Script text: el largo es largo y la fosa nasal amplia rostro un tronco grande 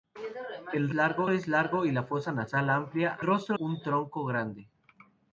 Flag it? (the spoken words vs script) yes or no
no